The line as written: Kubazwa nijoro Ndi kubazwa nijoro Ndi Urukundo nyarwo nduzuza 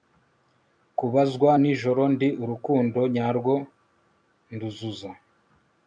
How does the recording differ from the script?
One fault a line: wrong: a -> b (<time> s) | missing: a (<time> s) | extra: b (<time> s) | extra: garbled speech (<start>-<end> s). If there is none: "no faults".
missing: kubazwa nijoro Ndi (2.3 s)